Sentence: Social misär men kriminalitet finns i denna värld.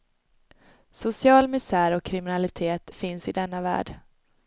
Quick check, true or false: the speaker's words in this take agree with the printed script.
false